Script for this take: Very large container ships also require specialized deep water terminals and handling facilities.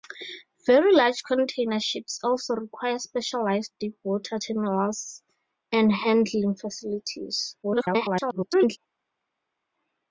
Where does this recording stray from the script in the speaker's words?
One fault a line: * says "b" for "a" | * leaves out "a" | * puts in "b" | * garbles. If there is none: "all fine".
* garbles